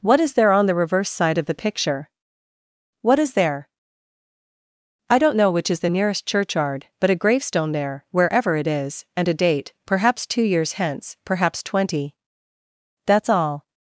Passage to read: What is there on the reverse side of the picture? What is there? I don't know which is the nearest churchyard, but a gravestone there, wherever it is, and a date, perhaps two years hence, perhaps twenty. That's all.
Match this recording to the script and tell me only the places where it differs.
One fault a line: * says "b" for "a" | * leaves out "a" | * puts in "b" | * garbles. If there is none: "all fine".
all fine